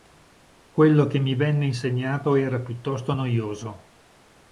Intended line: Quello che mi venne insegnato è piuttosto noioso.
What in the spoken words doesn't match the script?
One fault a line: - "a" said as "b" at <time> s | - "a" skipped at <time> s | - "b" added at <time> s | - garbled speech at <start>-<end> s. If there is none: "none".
- "è" said as "era" at 2.3 s